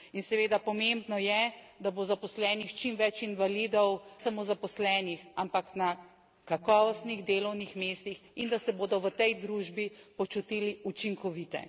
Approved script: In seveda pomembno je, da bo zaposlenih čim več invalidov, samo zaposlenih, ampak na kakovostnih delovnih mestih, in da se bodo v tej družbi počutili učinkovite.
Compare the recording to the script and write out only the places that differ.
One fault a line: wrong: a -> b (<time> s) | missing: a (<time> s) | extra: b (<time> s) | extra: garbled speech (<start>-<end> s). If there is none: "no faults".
no faults